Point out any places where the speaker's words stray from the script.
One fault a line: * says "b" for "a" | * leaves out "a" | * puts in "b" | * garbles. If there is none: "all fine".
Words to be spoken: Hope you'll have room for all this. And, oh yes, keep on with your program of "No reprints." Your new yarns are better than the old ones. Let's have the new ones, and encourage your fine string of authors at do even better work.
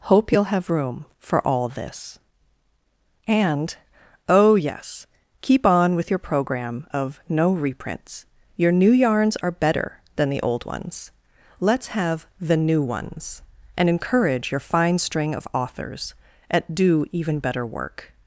all fine